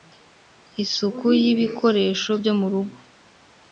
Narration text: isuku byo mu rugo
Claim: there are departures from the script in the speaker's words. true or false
true